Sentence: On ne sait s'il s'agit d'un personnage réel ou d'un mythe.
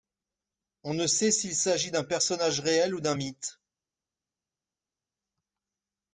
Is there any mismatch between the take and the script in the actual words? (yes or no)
no